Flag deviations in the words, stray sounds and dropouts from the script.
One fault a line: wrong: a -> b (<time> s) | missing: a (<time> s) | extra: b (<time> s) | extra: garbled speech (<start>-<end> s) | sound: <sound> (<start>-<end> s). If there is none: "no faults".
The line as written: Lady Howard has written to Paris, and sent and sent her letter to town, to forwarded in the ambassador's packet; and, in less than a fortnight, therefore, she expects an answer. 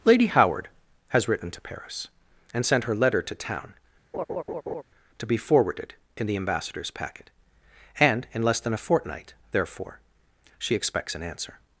missing: and sent (2.9 s)
sound: laugh (4.1-4.8 s)
extra: be (5.3 s)